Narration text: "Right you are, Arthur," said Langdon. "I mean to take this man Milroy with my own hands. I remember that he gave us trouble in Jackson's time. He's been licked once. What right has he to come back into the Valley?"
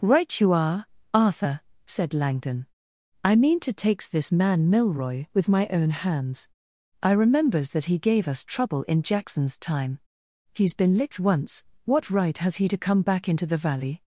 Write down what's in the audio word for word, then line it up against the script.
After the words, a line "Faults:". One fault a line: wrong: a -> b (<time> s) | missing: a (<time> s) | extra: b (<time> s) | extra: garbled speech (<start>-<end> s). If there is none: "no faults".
"Right you are, Arthur," said Langdon. "I mean to takes this man Milroy with my own hands. I remembers that he gave us trouble in Jackson's time. He's been licked once. What right has he to come back into the Valley?"
Faults:
wrong: take -> takes (3.7 s)
wrong: remember -> remembers (7.1 s)